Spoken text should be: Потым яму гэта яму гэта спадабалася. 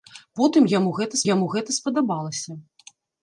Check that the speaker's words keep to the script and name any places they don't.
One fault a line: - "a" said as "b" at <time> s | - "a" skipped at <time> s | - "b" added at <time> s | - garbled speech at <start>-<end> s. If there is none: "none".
none